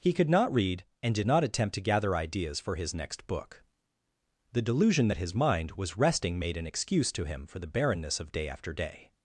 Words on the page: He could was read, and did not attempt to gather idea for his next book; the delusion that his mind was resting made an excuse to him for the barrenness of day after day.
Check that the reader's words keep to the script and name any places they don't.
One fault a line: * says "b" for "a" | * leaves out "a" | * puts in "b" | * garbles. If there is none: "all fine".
* says "not" for "was"
* says "ideas" for "idea"